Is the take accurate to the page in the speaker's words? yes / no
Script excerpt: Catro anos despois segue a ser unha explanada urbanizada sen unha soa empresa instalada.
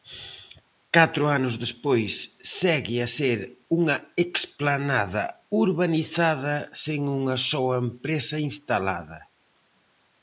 yes